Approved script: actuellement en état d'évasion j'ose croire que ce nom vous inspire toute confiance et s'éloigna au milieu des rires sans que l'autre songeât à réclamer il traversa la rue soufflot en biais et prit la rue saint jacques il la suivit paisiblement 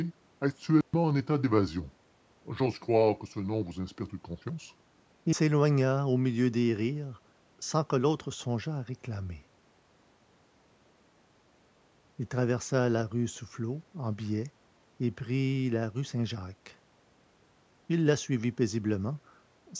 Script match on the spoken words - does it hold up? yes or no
yes